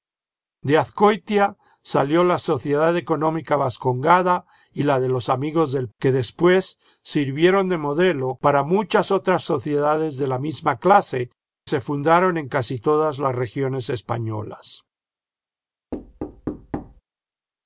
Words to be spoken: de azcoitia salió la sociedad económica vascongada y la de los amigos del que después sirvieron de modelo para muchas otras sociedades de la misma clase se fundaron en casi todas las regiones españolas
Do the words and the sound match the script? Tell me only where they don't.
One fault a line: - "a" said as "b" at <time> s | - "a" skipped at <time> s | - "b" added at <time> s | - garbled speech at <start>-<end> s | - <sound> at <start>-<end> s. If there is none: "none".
- thud at 15.9-17.0 s